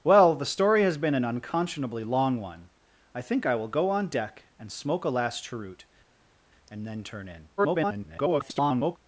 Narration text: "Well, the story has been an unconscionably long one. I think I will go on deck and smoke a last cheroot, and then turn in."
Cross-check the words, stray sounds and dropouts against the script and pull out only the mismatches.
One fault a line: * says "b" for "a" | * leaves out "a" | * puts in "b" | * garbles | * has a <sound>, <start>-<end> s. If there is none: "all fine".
* garbles